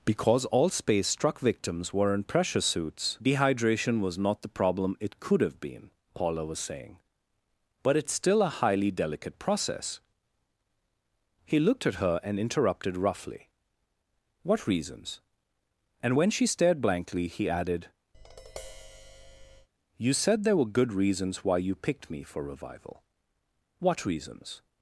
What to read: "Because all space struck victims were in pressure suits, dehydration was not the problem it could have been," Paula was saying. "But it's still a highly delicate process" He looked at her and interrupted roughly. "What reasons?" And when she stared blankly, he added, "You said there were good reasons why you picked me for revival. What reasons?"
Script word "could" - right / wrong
right